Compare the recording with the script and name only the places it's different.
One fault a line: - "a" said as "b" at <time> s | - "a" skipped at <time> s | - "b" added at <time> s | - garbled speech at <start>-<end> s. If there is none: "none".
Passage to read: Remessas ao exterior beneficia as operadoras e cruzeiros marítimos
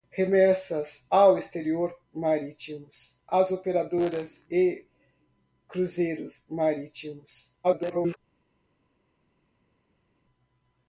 - "beneficia" said as "marítimos" at 2.1 s
- garbled speech at 7.6-8.2 s